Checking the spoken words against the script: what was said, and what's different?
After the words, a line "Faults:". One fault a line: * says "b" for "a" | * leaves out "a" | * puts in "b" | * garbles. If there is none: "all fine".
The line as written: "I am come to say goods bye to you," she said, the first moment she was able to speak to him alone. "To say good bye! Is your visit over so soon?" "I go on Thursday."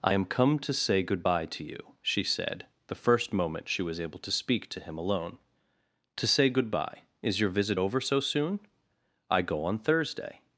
"I am come to say good bye to you," she said, the first moment she was able to speak to him alone. "To say good bye! Is your visit over so soon?" "I go on Thursday."
Faults:
* says "good" for "goods"